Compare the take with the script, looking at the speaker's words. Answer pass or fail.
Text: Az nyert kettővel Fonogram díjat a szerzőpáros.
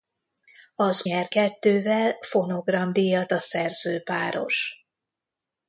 pass